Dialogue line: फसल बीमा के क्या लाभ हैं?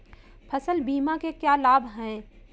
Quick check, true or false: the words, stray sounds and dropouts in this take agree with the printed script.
true